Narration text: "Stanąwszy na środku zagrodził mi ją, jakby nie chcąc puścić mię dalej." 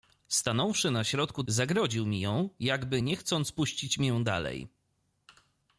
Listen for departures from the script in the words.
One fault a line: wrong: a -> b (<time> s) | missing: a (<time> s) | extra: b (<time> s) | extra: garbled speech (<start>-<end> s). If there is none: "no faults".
no faults